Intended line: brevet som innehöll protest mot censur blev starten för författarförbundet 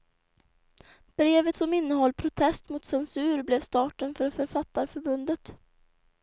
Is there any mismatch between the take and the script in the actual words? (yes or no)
no